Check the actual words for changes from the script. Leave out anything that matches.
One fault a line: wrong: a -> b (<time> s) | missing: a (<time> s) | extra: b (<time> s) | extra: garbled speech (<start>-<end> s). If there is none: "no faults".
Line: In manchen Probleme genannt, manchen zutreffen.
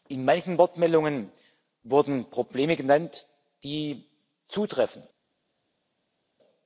extra: Wortmeldungen wurden (0.6 s)
wrong: manchen -> die (3.6 s)